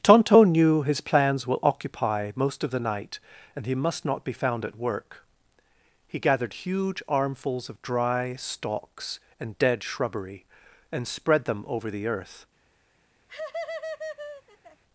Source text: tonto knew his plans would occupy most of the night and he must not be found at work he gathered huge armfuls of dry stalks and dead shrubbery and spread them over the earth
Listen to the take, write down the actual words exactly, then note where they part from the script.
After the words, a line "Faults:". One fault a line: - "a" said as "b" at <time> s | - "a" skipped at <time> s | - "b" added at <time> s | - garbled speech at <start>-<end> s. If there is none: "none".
tonto knew his plans will occupy most of the night and he must not be found at work he gathered huge armfuls of dry stalks and dead shrubbery and spread them over the earth
Faults:
- "would" said as "will" at 1.4 s